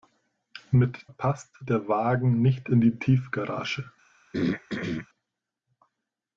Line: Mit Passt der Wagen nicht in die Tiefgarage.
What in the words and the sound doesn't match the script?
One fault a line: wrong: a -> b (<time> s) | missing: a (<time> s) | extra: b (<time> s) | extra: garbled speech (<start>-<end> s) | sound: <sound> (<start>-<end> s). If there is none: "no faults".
sound: throat clearing (4.3-5.1 s)